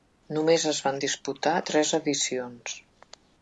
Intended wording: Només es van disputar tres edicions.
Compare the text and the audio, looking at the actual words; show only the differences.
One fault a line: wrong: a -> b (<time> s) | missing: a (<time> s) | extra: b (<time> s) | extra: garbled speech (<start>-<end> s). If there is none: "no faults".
no faults